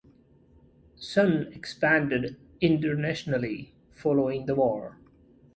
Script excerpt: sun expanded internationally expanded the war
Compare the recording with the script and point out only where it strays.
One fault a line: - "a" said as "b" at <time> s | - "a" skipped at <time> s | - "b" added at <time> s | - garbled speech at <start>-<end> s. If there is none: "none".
- "expanded" said as "following" at 3.9 s